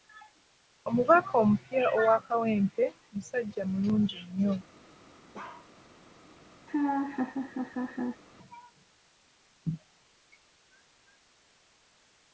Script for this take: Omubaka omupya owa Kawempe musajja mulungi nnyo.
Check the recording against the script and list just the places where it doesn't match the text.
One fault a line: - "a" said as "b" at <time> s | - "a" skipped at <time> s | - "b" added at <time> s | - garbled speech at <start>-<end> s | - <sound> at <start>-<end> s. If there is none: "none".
- bark at 5.3-5.7 s
- laugh at 6.7-8.2 s